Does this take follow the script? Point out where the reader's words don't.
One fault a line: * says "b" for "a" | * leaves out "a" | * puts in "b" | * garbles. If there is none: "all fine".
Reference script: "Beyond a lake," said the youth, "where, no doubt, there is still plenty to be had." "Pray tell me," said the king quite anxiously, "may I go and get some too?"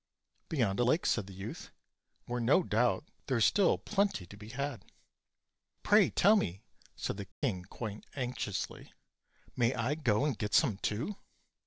all fine